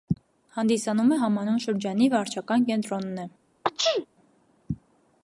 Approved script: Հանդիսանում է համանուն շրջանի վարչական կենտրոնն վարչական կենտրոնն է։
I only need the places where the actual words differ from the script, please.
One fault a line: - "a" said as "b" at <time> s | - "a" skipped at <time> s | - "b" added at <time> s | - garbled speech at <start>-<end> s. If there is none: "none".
- "վարչական կենտրոնն" skipped at 3.2 s